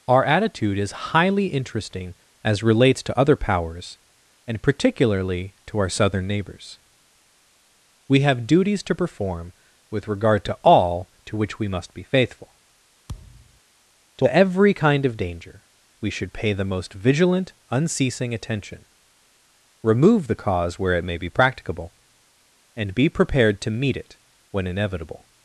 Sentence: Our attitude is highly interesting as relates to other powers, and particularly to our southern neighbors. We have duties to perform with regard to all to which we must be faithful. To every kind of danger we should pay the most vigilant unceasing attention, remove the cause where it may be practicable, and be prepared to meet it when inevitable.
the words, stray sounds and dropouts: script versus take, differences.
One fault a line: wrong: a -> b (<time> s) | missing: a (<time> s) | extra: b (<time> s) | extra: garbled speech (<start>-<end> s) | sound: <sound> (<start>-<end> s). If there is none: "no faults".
sound: thud (13.1-13.6 s)